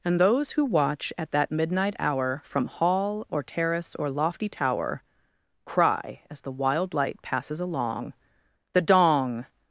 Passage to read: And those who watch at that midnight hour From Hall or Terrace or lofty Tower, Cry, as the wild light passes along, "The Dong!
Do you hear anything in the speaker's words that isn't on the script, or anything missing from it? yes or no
no